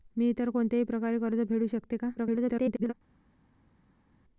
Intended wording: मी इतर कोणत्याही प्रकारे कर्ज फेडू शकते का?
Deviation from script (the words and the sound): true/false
true